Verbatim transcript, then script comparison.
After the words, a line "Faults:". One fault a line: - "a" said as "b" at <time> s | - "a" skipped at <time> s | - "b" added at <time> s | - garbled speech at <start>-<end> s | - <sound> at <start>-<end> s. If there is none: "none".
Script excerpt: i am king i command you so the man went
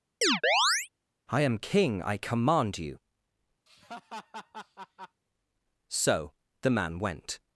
i am king i command you so the man went
Faults:
- chirp at 0.2-0.9 s
- laugh at 3.7-5.2 s